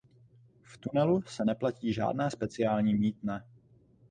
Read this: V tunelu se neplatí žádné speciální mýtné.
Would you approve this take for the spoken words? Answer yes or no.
yes